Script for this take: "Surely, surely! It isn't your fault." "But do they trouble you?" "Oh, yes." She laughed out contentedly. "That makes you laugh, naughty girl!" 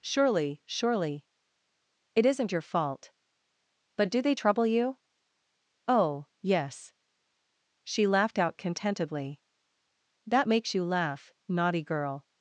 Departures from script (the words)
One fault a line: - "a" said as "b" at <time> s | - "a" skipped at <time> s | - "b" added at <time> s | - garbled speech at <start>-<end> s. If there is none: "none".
none